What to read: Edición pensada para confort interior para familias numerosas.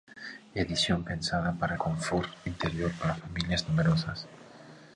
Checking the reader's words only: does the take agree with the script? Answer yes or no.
yes